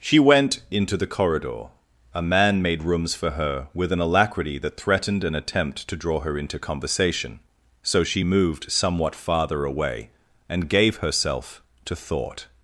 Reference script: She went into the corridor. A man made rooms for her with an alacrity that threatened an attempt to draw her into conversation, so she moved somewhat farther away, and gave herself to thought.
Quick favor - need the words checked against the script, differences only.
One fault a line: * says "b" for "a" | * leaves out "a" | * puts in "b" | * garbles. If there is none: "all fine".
all fine